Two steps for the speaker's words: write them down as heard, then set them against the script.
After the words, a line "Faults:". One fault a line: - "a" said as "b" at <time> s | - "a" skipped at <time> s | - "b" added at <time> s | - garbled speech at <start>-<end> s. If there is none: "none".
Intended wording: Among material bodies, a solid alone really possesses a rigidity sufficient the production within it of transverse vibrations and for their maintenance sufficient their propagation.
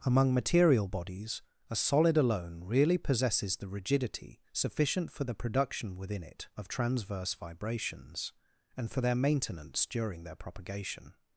Among material bodies, a solid alone really possesses the rigidity sufficient for the production within it of transverse vibrations and for their maintenance during their propagation.
Faults:
- "a" said as "the" at 3.6 s
- "for" added at 5.1 s
- "sufficient" said as "during" at 9.9 s